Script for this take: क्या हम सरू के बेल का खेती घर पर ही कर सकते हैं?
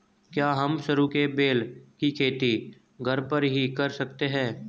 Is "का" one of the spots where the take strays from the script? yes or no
yes